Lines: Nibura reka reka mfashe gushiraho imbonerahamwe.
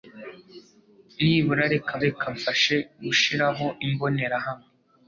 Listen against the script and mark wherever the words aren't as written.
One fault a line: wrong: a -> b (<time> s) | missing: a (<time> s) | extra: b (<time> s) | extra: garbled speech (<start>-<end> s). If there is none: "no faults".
no faults